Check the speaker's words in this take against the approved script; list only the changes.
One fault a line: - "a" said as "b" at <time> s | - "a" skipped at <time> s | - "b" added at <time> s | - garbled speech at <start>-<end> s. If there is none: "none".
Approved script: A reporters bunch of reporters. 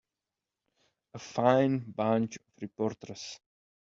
- "reporters" said as "fine" at 1.2 s